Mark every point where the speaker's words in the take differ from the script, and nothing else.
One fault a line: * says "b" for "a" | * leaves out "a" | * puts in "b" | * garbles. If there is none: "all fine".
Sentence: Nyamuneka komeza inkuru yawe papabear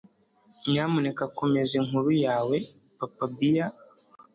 all fine